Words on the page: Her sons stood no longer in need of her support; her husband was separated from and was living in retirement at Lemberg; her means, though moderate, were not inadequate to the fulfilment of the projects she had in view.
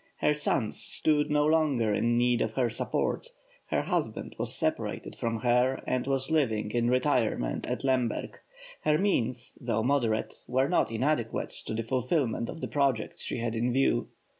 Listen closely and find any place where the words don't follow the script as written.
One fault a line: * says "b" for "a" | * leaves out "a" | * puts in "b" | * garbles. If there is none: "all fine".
* puts in "her"